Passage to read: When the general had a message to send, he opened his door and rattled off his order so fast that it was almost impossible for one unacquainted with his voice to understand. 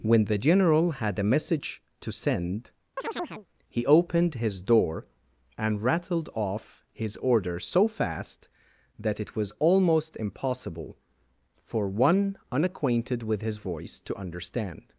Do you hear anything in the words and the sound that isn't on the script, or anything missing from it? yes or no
yes